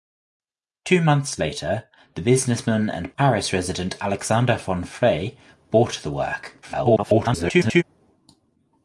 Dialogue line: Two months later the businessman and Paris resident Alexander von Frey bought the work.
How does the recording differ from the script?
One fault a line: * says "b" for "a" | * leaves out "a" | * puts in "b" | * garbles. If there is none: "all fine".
* garbles